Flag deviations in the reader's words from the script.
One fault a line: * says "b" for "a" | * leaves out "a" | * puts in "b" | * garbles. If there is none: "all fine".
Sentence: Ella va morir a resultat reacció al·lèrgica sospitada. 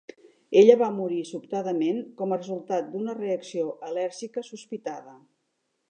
* puts in "sobtadament com"
* puts in "d'una"